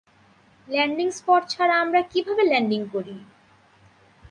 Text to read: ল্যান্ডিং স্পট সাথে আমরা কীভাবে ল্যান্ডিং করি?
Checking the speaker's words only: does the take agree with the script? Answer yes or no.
no